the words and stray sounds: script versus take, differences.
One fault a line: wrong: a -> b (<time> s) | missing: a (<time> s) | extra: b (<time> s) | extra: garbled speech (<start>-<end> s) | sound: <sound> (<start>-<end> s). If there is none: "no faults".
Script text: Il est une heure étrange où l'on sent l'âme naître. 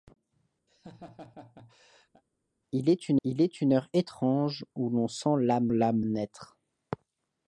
sound: laugh (0.7-2.2 s)
extra: il est une (3.2 s)
extra: l'âme (5.7 s)